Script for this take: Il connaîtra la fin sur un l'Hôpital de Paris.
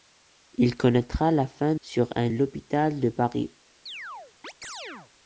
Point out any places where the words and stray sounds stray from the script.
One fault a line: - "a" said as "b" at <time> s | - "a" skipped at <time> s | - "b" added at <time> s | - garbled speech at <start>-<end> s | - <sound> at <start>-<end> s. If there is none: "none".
- chirp at 3.9-5.1 s